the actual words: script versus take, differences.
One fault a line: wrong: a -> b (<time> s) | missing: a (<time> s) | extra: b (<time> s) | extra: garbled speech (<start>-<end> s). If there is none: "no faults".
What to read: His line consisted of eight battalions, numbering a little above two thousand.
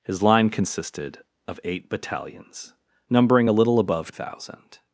missing: two (4.1 s)